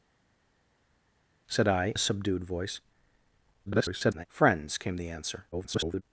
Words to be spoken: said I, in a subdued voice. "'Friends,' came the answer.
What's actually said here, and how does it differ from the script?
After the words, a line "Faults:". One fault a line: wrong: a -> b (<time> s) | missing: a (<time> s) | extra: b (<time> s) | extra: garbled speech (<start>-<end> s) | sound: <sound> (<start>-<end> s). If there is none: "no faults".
said I, a subdued voice. [garbled] "'Friends,' came the answer. [garbled]
Faults:
missing: in (1.9 s)
extra: garbled speech (3.7-4.3 s)
extra: garbled speech (5.5-6.0 s)